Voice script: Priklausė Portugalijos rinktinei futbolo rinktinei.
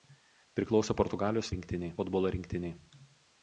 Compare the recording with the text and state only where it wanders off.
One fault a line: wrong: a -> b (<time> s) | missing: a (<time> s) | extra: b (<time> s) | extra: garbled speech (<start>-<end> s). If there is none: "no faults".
no faults